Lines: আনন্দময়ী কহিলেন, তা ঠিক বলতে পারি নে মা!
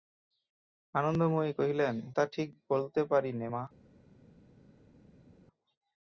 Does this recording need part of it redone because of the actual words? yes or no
no